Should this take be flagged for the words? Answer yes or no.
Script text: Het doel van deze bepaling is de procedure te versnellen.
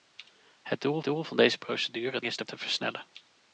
yes